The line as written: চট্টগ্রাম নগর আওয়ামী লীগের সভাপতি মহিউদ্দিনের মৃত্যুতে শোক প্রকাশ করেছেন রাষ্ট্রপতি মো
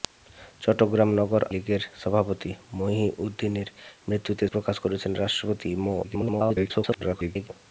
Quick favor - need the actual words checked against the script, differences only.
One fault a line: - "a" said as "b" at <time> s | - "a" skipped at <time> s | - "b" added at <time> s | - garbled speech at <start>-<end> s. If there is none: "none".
- "আওয়ামী" skipped at 1.4 s
- "শোক" skipped at 4.4 s
- garbled speech at 6.0-7.5 s